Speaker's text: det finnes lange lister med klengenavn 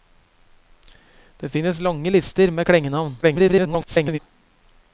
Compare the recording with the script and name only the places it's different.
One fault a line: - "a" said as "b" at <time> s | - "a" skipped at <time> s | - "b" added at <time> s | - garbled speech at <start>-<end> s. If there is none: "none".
- garbled speech at 3.2-4.2 s